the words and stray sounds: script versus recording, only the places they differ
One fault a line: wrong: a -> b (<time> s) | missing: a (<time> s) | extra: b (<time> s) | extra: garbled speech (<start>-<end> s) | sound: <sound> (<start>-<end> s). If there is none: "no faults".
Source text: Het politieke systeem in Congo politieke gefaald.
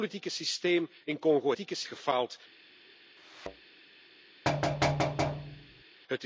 sound: thud (3.2-3.7 s)
sound: thud (4.4-5.8 s)